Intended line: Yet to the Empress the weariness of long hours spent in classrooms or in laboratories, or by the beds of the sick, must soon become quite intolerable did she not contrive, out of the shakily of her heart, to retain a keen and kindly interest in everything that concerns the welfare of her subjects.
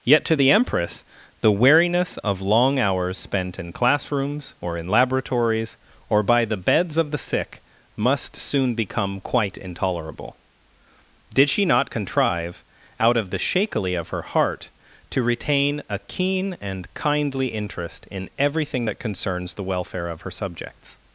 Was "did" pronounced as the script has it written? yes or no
yes